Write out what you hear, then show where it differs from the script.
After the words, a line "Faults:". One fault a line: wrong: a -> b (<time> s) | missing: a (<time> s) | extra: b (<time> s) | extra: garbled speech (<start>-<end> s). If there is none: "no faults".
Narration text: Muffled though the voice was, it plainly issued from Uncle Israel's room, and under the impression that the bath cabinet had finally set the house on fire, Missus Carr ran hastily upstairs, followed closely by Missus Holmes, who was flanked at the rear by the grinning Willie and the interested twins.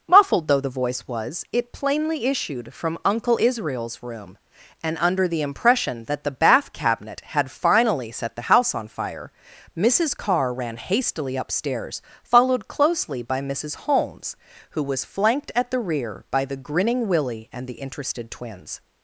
Muffled though the voice was, it plainly issued from Uncle Israel's room, and under the impression that the bath cabinet had finally set the house on fire, Missus Carr ran hastily upstairs, followed closely by Missus Holmes, who was flanked at the rear by the grinning Willie and the interested twins.
Faults:
no faults